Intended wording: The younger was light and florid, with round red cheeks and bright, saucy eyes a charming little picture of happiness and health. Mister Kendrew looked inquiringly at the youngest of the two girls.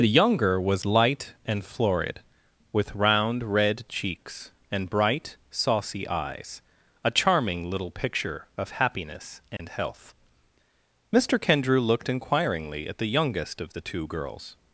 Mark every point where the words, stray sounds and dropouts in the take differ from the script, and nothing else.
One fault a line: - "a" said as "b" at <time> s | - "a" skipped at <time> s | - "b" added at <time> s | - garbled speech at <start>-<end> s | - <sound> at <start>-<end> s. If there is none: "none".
- dropout at 9.6-9.6 s